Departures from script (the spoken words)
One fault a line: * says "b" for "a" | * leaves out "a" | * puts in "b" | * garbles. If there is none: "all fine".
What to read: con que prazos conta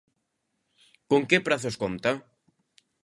all fine